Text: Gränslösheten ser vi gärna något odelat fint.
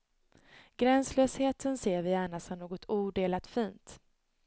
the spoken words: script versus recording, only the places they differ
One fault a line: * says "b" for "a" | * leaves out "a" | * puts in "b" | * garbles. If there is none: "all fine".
* puts in "som"